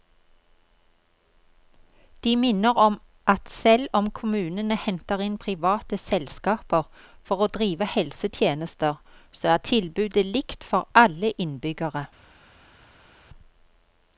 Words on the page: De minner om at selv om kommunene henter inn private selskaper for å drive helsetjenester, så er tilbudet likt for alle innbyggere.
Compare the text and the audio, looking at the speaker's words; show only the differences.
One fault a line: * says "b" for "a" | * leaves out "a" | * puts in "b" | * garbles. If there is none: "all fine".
all fine